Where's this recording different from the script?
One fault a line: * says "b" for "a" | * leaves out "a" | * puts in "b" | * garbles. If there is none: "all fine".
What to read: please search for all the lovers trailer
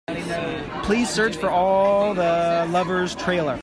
all fine